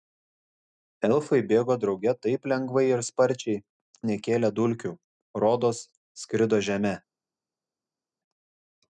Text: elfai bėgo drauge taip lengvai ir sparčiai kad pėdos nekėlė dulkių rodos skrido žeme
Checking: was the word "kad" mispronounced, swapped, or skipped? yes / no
yes